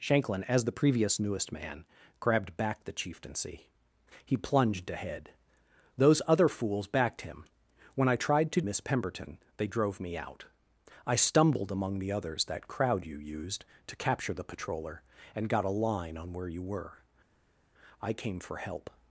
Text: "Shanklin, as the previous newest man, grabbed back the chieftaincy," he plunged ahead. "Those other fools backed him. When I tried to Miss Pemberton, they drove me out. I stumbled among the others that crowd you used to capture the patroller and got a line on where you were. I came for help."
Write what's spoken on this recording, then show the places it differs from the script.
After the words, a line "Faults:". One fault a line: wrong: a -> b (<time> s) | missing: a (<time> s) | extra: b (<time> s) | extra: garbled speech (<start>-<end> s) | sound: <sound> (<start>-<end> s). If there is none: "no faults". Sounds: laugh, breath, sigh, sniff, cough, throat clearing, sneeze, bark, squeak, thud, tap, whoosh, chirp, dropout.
"Shanklin, as the previous newest man, grabbed back the chieftaincy," he plunged ahead. "Those other fools backed him. When I tried to Miss Pemberton, they drove me out. I stumbled among the others that crowd you used to capture the patroller and got a line on where you were. I came for help."
Faults:
no faults